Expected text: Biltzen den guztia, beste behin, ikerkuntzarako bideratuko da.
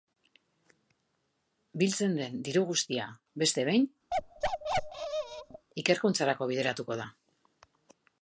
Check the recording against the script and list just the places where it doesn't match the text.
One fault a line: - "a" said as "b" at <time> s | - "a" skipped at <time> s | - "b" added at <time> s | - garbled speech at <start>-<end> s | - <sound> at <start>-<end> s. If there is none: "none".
- "diru" added at 2.5 s
- bark at 4.1-5.7 s